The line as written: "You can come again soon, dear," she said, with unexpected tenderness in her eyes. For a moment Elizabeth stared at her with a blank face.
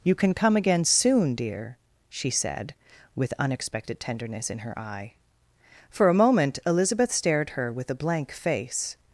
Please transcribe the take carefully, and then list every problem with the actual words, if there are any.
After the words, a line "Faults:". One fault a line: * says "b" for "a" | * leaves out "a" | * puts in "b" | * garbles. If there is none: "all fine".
"You can come again soon, dear," she said, with unexpected tenderness in her eye. For a moment Elizabeth stared her with a blank face.
Faults:
* says "eye" for "eyes"
* leaves out "at"